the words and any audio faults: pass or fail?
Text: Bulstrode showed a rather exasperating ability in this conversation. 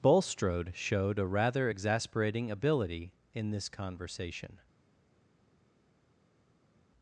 pass